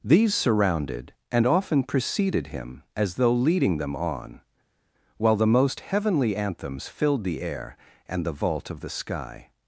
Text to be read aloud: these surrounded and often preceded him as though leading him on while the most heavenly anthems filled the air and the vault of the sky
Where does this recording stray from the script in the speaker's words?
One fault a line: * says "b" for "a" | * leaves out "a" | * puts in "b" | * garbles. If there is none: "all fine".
* says "them" for "him"